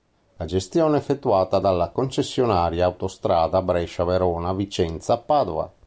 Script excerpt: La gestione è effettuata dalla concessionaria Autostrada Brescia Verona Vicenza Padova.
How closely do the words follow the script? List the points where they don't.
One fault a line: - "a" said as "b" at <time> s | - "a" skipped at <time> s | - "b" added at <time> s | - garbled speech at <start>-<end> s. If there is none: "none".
none